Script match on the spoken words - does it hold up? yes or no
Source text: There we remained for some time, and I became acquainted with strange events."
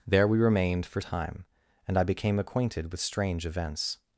no